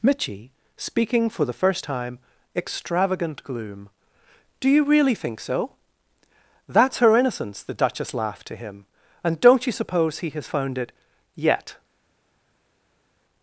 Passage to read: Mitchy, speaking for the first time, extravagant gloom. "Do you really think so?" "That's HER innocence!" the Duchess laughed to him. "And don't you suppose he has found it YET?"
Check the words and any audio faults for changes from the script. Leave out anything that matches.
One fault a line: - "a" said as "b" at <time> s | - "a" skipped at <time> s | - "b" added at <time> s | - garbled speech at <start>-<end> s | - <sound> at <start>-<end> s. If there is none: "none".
none